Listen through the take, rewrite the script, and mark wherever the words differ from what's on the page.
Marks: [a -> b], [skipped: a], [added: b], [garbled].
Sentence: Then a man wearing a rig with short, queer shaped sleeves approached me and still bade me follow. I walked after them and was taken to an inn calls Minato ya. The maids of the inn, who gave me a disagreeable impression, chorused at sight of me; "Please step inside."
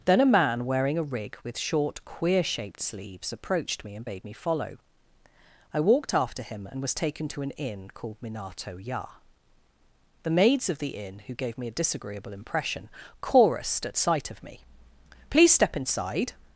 Then a man wearing a rig with short, queer shaped sleeves approached me and [skipped: still] bade me follow. I walked after [them -> him] and was taken to an inn [calls -> called] Minato ya. The maids of the inn, who gave me a disagreeable impression, chorused at sight of me; "Please step inside."